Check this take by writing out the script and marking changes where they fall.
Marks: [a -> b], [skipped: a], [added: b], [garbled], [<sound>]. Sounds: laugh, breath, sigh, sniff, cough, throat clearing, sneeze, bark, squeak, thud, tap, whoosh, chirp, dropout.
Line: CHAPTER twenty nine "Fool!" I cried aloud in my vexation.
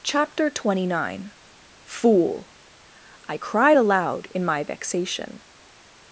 CHAPTER twenty nine "Fool!" I cried aloud in my vexation.